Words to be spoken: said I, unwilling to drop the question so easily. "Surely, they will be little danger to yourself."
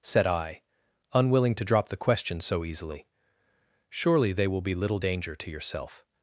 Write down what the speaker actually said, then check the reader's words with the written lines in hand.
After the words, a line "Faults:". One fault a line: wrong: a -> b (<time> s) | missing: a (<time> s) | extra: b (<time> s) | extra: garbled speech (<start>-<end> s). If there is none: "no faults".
said I, unwilling to drop the question so easily. "Surely, they will be little danger to yourself."
Faults:
no faults